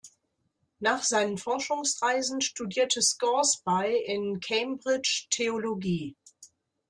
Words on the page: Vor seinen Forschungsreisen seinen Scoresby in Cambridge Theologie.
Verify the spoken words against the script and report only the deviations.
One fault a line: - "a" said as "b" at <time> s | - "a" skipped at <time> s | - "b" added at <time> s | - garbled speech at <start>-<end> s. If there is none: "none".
- "Vor" said as "Nach" at 0.8 s
- "seinen" said as "studierte" at 2.4 s